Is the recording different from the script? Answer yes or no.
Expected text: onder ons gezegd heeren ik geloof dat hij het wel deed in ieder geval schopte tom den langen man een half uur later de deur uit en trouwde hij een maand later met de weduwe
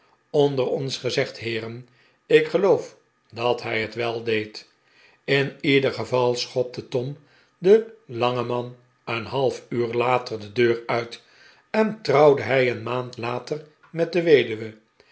no